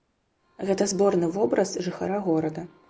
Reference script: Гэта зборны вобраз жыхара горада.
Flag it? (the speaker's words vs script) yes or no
no